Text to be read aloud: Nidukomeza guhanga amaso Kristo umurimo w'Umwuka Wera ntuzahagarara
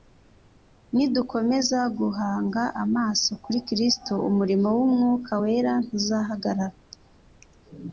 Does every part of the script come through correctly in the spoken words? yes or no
no